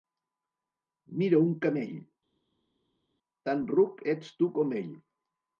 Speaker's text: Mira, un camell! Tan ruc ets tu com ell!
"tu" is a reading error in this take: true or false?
false